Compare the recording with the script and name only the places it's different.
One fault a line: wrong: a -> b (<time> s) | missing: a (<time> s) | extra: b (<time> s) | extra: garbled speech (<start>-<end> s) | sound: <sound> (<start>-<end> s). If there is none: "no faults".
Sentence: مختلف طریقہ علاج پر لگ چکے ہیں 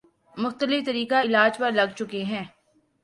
no faults